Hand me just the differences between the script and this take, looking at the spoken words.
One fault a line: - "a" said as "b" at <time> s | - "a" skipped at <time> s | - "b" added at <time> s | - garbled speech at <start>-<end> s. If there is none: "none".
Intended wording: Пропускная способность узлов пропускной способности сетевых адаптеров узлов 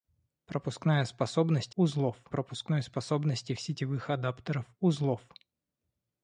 none